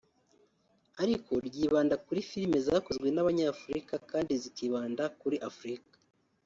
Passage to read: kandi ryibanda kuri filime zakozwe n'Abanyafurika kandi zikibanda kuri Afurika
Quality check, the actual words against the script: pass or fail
fail